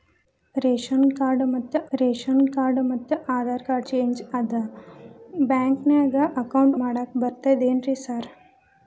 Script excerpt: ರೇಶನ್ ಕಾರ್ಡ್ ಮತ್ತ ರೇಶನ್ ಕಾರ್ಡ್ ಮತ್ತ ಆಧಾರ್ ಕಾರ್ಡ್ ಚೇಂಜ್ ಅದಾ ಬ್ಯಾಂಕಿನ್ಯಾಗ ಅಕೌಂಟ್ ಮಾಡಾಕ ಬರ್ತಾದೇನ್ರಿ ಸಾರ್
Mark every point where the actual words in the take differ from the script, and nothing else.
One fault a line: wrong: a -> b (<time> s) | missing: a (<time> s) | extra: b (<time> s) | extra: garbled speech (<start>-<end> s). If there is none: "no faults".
no faults